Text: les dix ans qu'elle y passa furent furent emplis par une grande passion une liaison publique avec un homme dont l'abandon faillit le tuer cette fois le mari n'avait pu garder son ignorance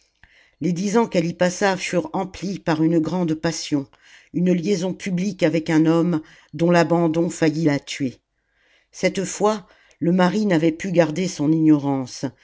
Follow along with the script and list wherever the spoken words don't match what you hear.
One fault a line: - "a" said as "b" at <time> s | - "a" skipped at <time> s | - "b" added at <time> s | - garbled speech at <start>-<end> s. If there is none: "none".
- "furent" skipped at 2.1 s
- "le" said as "la" at 7.6 s